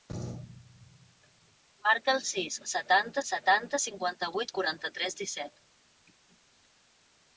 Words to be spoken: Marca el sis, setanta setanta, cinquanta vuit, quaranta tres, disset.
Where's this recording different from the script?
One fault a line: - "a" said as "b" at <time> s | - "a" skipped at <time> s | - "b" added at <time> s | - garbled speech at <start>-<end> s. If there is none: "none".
none